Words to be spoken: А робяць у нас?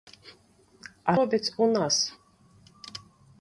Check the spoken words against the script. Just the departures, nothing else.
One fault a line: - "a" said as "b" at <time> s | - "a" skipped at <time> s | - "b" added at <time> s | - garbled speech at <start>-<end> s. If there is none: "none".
none